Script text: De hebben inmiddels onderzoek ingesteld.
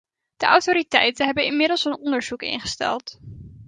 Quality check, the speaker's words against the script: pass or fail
fail